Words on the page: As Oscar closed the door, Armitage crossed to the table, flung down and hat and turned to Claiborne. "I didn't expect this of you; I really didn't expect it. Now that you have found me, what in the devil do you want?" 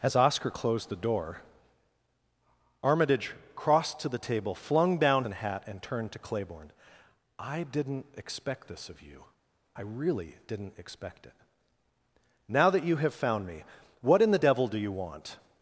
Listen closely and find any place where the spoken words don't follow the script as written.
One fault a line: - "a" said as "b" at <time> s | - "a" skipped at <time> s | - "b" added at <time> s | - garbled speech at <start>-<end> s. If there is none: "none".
none